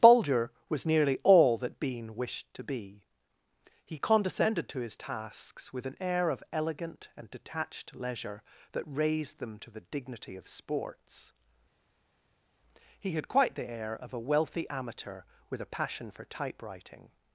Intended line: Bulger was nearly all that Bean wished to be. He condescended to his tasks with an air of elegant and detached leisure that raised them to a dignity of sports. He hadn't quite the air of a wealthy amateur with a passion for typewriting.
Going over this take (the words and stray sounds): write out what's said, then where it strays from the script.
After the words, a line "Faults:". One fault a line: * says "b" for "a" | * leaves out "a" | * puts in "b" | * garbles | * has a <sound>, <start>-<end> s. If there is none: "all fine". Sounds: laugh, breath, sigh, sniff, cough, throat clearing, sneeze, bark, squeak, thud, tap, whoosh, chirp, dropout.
Bulger was nearly all that Bean wished to be. He condescended to his tasks with an air of elegant and detached leisure that raised them to the dignity of sports. He had quite the air of a wealthy amateur with a passion for typewriting.
Faults:
* says "the" for "a"
* says "had" for "hadn't"